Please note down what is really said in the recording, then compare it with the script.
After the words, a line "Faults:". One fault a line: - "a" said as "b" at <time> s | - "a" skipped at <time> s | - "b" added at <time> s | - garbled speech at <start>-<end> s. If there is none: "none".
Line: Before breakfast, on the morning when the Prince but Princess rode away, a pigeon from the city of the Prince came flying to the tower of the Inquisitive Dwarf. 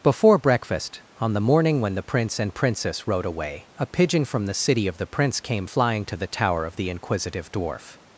Before breakfast, on the morning when the Prince and Princess rode away, a pigeon from the city of the Prince came flying to the tower of the Inquisitive Dwarf.
Faults:
- "but" said as "and" at 2.4 s